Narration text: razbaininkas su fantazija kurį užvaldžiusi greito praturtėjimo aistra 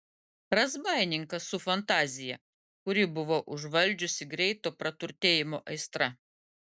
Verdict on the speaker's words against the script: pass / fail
fail